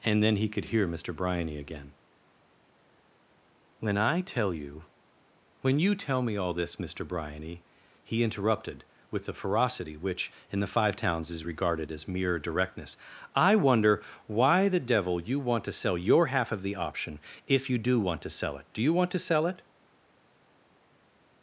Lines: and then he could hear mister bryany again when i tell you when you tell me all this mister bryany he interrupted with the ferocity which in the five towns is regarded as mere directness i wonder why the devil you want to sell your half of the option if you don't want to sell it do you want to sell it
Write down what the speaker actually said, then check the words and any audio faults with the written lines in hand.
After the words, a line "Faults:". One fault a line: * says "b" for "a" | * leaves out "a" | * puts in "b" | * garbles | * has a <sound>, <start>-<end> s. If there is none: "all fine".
and then he could hear mister bryany again when i tell you when you tell me all this mister bryany he interrupted with the ferocity which in the five towns is regarded as mere directness i wonder why the devil you want to sell your half of the option if you do want to sell it do you want to sell it
Faults:
* says "do" for "don't"